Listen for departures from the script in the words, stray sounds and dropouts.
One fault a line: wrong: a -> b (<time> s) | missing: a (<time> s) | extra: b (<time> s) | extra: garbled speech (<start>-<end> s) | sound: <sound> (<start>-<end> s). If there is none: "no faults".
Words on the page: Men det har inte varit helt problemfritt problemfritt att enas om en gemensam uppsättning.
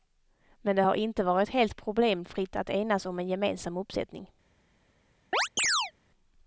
missing: problemfritt (2.6 s)
sound: chirp (5.3-5.9 s)